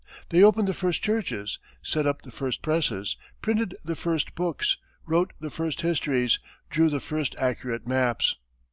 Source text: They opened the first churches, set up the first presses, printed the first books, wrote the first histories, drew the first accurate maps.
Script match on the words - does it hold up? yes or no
yes